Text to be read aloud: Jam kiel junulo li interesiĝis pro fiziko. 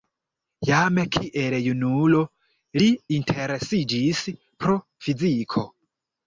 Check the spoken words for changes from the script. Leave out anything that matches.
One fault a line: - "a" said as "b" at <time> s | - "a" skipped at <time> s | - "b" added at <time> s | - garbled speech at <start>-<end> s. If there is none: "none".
none